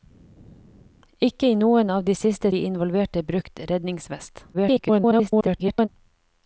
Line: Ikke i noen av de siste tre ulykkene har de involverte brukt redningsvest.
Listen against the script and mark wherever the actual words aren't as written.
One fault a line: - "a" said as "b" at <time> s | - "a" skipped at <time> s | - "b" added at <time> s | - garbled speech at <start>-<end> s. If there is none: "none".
- "tre ulykkene har" skipped at 2.5 s
- garbled speech at 4.5-5.9 s